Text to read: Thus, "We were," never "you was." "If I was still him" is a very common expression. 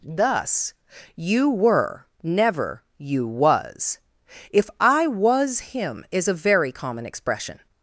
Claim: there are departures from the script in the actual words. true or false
true